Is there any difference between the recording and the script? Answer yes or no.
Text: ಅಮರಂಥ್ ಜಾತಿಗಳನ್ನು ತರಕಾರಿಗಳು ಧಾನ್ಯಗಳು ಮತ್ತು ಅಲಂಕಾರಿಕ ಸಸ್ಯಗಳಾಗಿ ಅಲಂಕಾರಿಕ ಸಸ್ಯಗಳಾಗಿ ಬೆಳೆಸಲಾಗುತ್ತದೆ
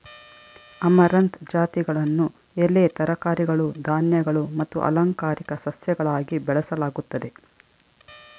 yes